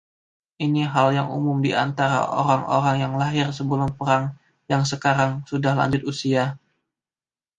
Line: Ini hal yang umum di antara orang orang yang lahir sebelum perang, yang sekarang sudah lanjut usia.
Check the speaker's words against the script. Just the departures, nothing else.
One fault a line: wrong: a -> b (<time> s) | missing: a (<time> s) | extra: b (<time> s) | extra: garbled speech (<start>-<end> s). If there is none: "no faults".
no faults